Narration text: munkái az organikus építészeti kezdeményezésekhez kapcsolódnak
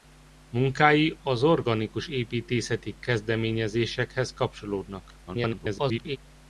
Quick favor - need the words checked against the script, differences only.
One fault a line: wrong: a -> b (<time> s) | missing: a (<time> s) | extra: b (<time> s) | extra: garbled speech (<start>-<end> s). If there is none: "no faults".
extra: garbled speech (5.3-6.2 s)